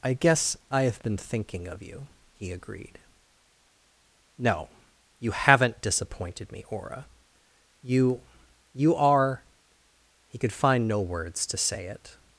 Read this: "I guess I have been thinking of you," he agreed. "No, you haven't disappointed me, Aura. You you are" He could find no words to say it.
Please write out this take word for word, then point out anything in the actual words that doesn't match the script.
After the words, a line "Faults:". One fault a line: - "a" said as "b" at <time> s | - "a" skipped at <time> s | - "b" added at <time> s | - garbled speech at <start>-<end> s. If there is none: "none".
"I guess I have been thinking of you," he agreed. "No, you haven't disappointed me, Aura. You you are" He could find no words to say it.
Faults:
none